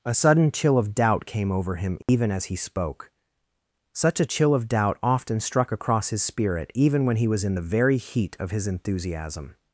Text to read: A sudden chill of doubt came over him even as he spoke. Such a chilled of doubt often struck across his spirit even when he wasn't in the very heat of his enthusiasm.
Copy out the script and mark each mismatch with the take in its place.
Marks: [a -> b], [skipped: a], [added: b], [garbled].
A sudden chill of doubt came over him even as he spoke. Such a [chilled -> chill] of doubt often struck across his spirit even when he [wasn't -> was] in the very heat of his enthusiasm.